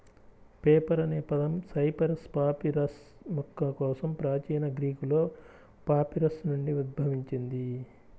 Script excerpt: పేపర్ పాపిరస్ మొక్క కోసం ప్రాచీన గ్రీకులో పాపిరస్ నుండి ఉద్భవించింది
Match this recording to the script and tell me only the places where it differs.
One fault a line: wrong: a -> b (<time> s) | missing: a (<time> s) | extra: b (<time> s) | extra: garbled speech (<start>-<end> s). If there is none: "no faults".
extra: అనే పదం సైపరస్ (1.0 s)